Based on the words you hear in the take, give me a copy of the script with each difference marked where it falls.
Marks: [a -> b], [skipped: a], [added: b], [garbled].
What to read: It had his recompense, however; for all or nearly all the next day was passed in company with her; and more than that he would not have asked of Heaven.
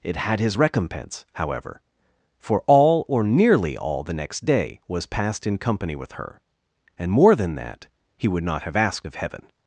It had his recompense, however; for all or nearly all the next day was passed in company with her; and more than that he would not have asked of Heaven.